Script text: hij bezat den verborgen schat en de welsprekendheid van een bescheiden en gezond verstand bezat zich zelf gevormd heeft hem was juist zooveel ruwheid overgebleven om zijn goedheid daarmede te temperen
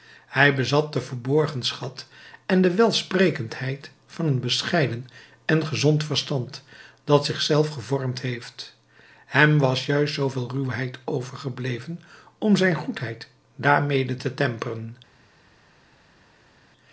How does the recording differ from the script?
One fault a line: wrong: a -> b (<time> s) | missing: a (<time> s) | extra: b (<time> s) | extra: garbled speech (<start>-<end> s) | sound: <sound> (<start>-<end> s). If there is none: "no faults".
wrong: bezat -> dat (7.0 s)